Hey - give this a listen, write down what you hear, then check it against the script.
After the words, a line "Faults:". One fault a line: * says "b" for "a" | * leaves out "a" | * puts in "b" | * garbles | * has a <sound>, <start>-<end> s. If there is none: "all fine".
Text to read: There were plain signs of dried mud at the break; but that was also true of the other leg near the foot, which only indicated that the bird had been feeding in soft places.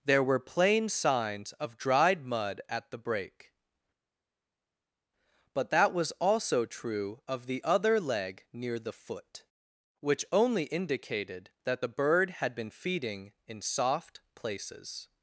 There were plain signs of dried mud at the break; but that was also true of the other leg near the foot, which only indicated that the bird had been feeding in soft places.
Faults:
all fine